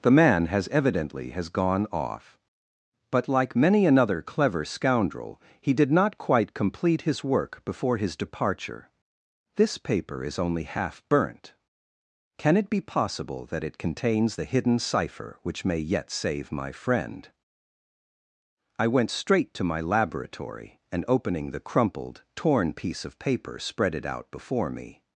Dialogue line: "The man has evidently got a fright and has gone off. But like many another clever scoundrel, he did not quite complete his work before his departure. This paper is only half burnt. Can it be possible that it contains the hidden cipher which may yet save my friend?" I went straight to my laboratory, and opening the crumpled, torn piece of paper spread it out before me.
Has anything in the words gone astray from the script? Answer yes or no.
yes